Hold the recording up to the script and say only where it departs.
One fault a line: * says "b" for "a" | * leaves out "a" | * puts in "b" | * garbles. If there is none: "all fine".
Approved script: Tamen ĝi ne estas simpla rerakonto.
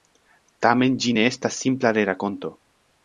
all fine